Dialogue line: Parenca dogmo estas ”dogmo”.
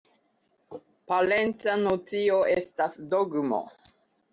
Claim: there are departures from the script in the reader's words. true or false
true